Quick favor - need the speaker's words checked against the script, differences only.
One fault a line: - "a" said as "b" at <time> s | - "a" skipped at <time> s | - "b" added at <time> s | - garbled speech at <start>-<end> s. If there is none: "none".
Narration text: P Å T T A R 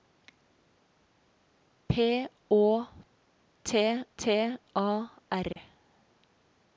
none